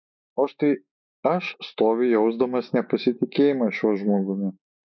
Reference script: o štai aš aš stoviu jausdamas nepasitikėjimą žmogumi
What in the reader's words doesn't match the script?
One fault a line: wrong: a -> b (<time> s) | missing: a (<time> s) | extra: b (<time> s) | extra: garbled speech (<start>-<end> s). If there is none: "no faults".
missing: aš (1.5 s)
extra: šiuo (3.8 s)